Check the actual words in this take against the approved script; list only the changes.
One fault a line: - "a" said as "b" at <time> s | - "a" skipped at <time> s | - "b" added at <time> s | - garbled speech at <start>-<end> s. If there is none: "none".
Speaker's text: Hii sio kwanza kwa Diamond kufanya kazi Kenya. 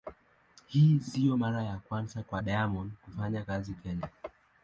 - "mara ya" added at 1.3 s